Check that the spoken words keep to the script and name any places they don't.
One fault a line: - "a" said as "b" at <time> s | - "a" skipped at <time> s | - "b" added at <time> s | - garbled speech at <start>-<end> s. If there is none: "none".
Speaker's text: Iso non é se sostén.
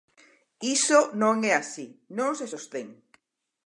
- "así non" added at 1.6 s